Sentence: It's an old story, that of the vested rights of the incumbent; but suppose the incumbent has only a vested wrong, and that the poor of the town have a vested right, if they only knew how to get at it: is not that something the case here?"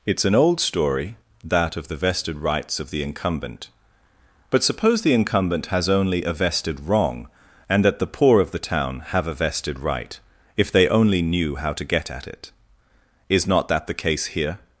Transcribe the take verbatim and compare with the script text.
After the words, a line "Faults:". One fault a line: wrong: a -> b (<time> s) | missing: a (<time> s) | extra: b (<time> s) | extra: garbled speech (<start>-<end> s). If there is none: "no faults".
It's an old story, that of the vested rights of the incumbent; but suppose the incumbent has only a vested wrong, and that the poor of the town have a vested right, if they only knew how to get at it: is not that the case here?"
Faults:
missing: something (13.8 s)